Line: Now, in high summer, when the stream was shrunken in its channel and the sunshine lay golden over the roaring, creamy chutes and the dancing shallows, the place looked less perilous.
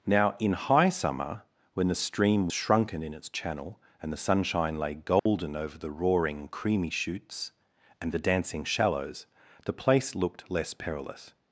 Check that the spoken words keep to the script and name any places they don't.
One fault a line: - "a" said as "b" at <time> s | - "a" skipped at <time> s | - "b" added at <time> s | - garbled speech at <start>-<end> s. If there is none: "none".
- "was" skipped at 2.5 s